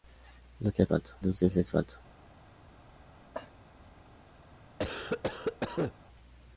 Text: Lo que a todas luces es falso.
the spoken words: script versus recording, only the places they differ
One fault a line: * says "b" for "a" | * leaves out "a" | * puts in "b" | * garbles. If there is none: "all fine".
* says "falso" for "todas"